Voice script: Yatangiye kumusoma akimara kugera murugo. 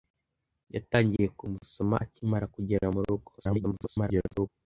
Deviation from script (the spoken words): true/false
true